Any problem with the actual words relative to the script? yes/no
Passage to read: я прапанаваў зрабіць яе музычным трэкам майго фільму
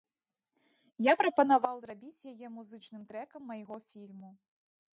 no